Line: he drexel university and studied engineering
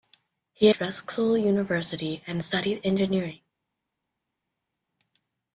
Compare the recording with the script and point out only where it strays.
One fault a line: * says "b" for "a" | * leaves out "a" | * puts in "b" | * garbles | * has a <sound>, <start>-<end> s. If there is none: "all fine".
all fine